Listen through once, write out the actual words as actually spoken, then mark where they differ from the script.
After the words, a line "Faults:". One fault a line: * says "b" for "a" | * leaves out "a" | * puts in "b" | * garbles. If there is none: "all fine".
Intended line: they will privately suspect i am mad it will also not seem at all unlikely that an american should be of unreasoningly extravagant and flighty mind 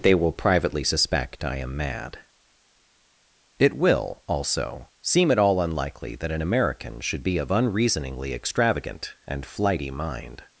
they will privately suspect i am mad it will also seem at all unlikely that an american should be of unreasoningly extravagant and flighty mind
Faults:
* leaves out "not"